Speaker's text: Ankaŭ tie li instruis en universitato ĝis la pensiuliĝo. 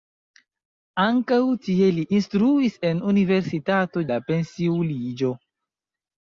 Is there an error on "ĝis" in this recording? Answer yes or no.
yes